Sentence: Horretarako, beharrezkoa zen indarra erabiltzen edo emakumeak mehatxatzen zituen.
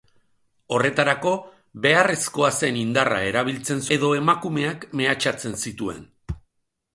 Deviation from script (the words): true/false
false